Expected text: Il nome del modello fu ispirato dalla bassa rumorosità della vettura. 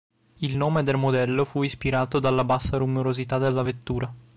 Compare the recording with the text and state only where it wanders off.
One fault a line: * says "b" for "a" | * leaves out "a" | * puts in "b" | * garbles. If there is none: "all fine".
all fine